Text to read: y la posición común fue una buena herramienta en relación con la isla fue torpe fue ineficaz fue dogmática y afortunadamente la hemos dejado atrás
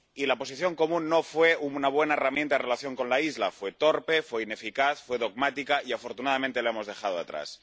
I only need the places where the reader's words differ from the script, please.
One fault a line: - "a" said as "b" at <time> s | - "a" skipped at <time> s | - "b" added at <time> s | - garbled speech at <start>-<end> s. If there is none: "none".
- "no" added at 1.1 s